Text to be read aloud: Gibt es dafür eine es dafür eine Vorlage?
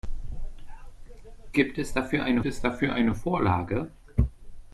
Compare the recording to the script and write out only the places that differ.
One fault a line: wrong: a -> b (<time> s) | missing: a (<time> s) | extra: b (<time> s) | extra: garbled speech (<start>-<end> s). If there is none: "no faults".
no faults